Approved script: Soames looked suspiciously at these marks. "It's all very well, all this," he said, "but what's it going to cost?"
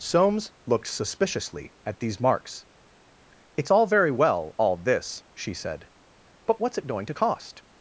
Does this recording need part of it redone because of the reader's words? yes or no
yes